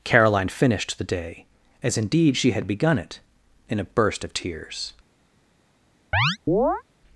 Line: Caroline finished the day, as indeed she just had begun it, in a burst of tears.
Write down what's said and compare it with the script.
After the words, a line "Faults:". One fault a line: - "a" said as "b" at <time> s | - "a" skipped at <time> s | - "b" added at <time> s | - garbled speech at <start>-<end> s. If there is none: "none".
Caroline finished the day, as indeed she had begun it, in a burst of tears.
Faults:
- "just" skipped at 2.5 s